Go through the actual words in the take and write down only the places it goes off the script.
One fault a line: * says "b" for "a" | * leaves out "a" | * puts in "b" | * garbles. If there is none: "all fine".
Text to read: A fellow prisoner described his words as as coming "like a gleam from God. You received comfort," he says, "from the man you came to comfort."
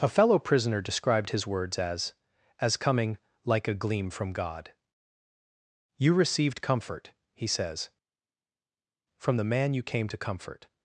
all fine